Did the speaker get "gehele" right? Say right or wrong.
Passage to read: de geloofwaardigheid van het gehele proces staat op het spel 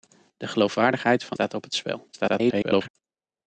wrong